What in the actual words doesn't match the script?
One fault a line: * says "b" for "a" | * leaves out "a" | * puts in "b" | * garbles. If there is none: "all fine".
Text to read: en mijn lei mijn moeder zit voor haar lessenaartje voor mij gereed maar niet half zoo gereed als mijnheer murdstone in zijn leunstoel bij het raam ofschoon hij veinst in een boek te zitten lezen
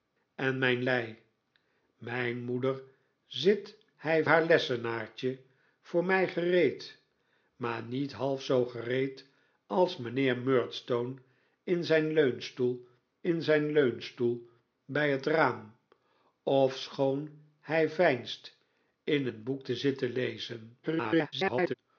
* says "hij" for "voor"
* puts in "in zijn leunstoel"
* garbles